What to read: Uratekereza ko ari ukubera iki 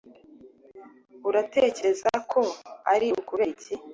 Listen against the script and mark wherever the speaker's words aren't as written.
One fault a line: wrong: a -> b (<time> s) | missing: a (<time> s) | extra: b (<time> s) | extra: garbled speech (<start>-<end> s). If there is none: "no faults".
no faults